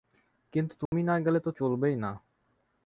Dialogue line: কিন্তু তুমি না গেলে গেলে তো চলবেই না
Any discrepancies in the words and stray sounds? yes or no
yes